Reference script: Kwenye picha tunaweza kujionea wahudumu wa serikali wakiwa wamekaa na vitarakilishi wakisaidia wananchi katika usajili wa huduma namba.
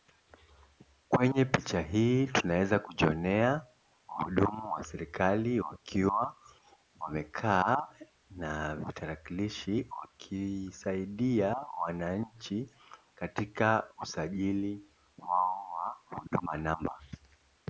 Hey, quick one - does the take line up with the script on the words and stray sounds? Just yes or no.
no